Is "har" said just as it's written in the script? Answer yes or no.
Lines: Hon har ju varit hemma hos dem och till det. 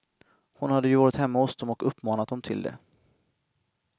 no